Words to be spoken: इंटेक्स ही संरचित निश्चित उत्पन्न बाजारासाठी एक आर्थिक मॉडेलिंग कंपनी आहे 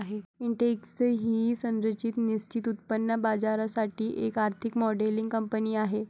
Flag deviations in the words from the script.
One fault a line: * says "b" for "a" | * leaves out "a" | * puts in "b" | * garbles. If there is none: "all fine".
all fine